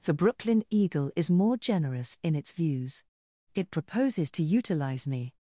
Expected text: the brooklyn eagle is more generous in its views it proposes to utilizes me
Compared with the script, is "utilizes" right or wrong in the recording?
wrong